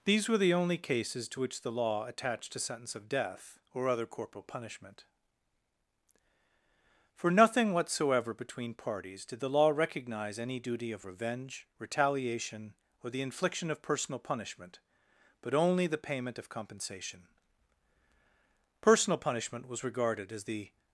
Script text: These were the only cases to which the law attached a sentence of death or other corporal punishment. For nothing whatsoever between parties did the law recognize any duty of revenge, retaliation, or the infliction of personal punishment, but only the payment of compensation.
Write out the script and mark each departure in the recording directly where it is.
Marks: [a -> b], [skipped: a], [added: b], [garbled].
These were the only cases to which the law attached a sentence of death or other corporal punishment. For nothing whatsoever between parties did the law recognize any duty of revenge, retaliation, or the infliction of personal punishment, but only the payment of compensation. [added: Personal punishment was regarded as the]